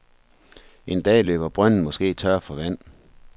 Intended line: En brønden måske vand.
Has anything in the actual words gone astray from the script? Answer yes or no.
yes